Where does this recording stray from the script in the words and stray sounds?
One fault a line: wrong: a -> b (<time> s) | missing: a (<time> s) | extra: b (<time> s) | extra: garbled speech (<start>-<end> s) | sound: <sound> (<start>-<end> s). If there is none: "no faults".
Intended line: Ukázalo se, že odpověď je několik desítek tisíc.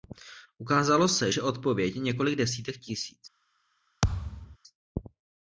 sound: thud (4.0-4.6 s)